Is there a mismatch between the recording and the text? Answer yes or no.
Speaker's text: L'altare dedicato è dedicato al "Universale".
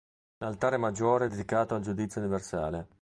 yes